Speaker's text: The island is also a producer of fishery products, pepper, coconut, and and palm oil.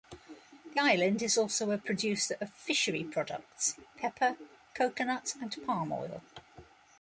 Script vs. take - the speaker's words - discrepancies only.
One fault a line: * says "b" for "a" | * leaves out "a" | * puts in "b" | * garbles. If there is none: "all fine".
* leaves out "and"